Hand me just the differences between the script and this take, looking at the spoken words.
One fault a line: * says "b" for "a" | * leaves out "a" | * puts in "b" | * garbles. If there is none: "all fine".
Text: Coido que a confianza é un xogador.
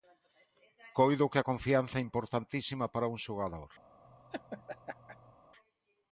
* puts in "importantísima para"